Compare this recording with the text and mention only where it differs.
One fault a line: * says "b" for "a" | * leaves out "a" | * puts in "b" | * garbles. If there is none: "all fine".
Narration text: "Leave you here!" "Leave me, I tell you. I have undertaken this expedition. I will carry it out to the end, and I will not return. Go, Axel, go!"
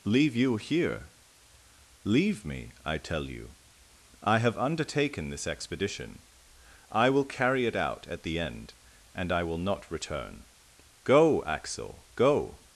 * says "at" for "to"